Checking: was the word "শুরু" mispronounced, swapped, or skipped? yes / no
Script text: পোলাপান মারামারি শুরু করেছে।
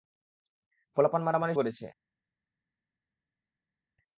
yes